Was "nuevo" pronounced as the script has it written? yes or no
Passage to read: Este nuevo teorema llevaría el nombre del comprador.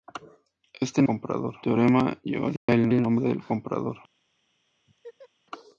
no